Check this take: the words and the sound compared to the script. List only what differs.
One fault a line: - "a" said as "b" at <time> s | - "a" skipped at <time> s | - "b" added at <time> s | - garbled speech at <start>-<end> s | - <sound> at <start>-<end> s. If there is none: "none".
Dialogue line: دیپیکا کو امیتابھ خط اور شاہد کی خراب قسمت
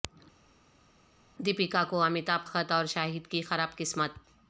none